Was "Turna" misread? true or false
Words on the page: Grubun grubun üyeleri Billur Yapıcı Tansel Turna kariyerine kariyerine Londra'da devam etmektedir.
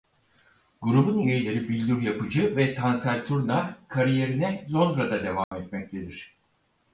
false